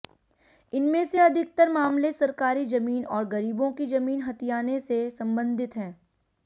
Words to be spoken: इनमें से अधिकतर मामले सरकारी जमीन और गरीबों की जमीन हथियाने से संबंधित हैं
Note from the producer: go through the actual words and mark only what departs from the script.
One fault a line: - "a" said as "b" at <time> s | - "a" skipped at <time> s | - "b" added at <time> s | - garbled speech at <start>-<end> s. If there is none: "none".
none